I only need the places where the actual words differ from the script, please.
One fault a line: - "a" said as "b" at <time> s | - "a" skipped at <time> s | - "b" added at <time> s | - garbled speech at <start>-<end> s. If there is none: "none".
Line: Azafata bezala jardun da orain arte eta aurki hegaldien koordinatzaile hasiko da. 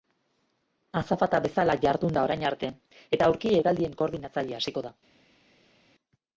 none